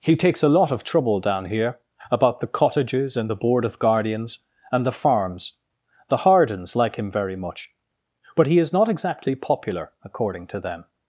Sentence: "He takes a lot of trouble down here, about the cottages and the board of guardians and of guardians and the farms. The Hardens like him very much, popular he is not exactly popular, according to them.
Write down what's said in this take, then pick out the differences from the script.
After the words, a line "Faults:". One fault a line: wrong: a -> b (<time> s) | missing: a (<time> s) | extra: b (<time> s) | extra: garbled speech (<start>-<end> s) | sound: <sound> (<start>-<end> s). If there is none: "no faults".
"He takes a lot of trouble down here, about the cottages and the board of guardians and the farms. The Hardens like him very much, but he is not exactly popular, according to them.
Faults:
missing: of guardians and (4.9 s)
wrong: popular -> but (8.3 s)